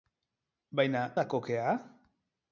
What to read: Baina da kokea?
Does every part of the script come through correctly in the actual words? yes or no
yes